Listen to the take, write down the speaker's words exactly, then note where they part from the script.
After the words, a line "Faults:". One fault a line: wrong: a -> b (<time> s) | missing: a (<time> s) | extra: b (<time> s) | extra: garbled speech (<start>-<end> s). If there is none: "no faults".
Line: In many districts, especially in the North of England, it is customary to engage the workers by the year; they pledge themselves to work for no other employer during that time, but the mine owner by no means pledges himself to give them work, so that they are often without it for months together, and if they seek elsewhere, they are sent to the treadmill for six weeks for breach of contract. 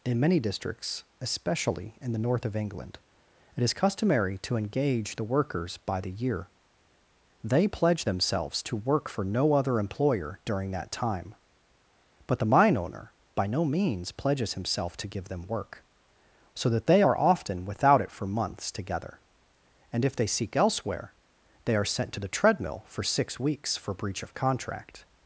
In many districts, especially in the North of England, it is customary to engage the workers by the year; they pledge themselves to work for no other employer during that time, but the mine owner by no means pledges himself to give them work, so that they are often without it for months together, and if they seek elsewhere, they are sent to the treadmill for six weeks for breach of contract.
Faults:
no faults